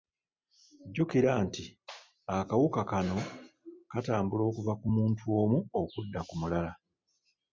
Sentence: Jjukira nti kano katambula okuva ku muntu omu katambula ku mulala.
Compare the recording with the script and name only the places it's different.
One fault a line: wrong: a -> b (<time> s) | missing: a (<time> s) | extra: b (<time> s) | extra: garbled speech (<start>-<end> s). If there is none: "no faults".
extra: akawuka (2.4 s)
wrong: katambula -> okudda (5.8 s)